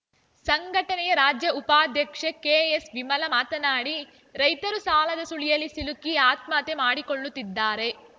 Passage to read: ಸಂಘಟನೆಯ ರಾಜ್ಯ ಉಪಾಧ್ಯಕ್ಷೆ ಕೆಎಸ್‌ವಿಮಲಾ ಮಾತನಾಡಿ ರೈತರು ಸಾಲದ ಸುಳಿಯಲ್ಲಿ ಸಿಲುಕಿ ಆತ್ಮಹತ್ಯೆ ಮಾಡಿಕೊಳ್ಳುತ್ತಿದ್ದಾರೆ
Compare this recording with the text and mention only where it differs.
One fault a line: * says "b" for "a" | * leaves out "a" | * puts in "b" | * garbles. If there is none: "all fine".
all fine